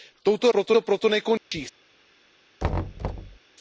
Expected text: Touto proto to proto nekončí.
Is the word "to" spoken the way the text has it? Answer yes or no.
yes